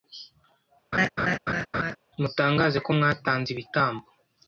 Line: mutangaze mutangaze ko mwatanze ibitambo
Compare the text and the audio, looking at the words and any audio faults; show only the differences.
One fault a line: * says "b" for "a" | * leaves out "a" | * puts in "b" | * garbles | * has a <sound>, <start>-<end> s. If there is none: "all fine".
* has a laugh, 0.9-2.0 s
* leaves out "mutangaze"